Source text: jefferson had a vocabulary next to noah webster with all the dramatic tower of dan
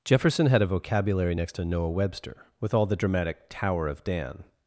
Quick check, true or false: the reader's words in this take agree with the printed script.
true